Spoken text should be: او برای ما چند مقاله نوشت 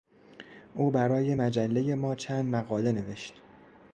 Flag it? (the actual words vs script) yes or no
yes